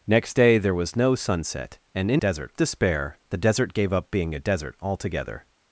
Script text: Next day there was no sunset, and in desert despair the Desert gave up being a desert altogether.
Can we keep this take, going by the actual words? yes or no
yes